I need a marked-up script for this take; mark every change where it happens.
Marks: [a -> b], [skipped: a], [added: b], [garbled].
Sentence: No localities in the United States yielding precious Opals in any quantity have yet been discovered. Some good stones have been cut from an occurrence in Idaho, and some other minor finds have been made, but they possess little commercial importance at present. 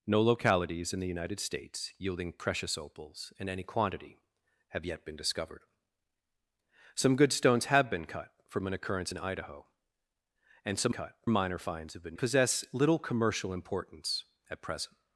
No localities in the United States yielding precious Opals in any quantity have yet been discovered. Some good stones have been cut from an occurrence in Idaho, and some [other -> cut] minor finds have been [skipped: made, but they] possess little commercial importance at present.